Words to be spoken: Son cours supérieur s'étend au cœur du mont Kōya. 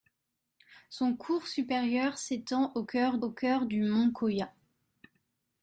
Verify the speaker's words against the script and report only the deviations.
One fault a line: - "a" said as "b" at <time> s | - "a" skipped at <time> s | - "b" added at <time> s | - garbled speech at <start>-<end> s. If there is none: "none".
- "au cœur" added at 3.2 s